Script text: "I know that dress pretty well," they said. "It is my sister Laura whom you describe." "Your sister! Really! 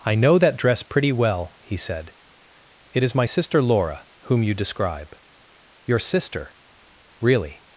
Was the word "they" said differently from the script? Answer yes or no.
yes